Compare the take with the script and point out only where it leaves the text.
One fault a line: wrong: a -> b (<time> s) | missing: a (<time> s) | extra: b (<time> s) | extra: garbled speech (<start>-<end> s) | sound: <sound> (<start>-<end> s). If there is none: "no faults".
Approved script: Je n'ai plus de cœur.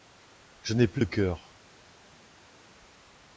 no faults